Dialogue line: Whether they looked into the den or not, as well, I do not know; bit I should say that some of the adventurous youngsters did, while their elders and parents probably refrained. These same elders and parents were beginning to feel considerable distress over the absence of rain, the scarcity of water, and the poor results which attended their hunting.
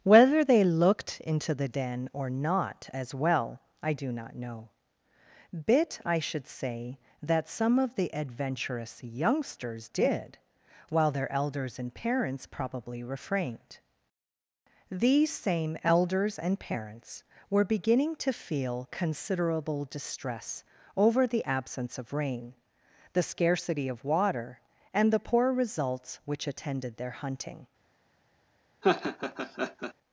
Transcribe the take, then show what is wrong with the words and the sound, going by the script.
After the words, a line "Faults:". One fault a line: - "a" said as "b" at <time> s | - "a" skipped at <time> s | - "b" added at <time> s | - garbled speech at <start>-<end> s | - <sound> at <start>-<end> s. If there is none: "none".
Whether they looked into the den or not, as well, I do not know; bit I should say that some of the adventurous youngsters did, while their elders and parents probably refrained. These same elders and parents were beginning to feel considerable distress over the absence of rain, the scarcity of water, and the poor results which attended their hunting.
Faults:
- laugh at 28.8-29.9 s